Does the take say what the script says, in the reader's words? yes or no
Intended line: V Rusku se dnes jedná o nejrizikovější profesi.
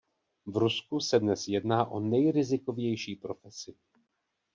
yes